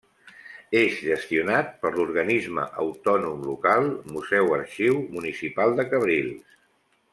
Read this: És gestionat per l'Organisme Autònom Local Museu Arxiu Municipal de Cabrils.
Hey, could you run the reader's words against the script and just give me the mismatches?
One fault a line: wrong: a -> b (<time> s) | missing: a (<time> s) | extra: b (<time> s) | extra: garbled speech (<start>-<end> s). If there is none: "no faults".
no faults